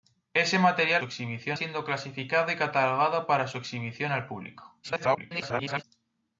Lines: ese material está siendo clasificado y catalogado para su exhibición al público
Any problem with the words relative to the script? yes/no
yes